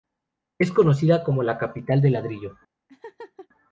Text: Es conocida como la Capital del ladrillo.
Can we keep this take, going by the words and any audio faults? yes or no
no